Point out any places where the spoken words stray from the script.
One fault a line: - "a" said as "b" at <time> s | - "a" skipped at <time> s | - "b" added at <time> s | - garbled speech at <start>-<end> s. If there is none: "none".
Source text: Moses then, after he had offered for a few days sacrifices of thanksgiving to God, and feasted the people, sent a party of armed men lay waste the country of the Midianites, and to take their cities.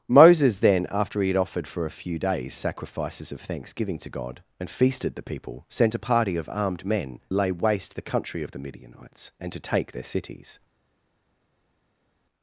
none